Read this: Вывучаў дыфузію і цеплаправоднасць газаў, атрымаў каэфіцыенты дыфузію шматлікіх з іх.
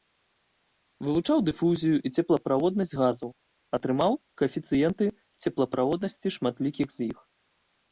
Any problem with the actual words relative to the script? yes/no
yes